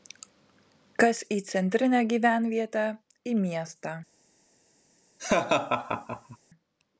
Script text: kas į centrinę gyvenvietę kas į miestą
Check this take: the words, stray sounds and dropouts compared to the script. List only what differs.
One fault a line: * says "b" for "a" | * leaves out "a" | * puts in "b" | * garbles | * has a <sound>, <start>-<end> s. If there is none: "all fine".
* leaves out "kas"
* has a laugh, 5.2-6.4 s